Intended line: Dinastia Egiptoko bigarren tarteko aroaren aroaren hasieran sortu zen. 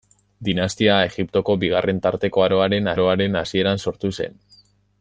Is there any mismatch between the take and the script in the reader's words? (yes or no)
no